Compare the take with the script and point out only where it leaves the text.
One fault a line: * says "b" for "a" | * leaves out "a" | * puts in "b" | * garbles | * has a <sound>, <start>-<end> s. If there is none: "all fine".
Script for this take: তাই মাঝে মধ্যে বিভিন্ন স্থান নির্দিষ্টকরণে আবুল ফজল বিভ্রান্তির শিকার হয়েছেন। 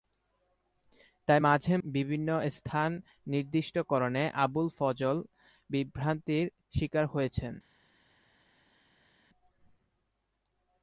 * leaves out "মধ্যে"